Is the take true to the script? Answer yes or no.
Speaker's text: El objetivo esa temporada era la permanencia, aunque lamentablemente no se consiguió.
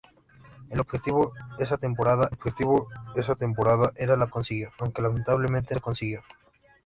no